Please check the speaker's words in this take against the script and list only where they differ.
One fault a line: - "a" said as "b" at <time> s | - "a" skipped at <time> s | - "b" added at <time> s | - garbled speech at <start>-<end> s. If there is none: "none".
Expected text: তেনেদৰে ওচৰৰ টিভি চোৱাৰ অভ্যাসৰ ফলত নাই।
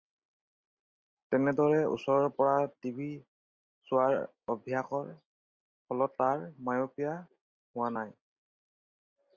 - "পৰা" added at 2.4 s
- "তাৰ মায়'পিয়া হোৱা" added at 6.2 s